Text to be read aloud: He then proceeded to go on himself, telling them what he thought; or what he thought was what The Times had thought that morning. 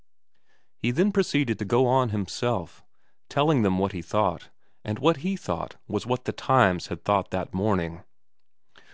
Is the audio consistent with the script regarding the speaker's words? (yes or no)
no